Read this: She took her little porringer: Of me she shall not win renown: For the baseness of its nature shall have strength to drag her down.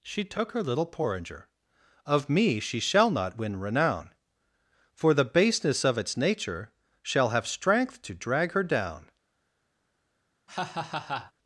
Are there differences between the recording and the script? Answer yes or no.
no